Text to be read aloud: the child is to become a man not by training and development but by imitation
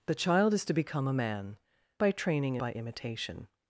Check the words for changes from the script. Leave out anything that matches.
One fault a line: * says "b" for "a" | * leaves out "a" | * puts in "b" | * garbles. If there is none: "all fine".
* leaves out "not"
* leaves out "and development but"